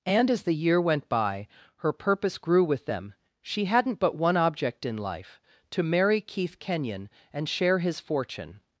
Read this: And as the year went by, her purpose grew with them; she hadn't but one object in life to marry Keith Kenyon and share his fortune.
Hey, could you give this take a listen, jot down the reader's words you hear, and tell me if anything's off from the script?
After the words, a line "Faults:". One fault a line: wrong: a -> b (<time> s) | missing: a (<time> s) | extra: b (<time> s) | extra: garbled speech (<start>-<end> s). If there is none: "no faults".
And as the year went by, her purpose grew with them; she hadn't but one object in life to marry Keith Kenyon and share his fortune.
Faults:
no faults